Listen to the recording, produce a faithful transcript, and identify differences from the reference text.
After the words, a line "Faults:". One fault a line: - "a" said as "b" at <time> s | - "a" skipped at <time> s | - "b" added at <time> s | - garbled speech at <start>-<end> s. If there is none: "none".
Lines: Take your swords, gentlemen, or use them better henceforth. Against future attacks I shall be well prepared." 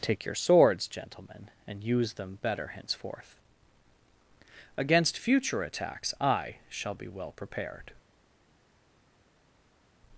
Take your swords, gentlemen, and use them better henceforth. Against future attacks I shall be well prepared."
Faults:
- "or" said as "and" at 1.7 s